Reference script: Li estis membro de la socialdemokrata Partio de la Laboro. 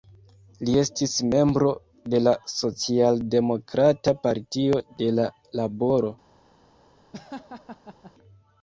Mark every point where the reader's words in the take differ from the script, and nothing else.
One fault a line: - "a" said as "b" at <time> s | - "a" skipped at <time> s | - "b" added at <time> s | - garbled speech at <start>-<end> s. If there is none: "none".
none